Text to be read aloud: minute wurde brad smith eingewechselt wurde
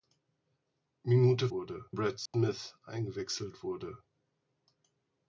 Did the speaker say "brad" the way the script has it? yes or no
yes